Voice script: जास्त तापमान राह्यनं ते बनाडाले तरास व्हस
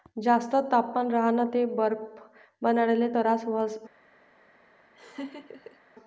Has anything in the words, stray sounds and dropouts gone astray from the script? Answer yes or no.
yes